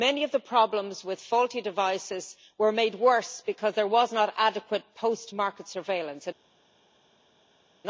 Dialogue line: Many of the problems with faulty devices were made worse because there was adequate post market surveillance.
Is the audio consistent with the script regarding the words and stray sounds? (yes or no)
no